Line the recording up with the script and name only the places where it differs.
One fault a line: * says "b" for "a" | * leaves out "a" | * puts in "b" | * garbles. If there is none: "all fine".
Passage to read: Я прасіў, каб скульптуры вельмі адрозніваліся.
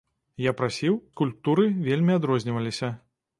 * leaves out "каб"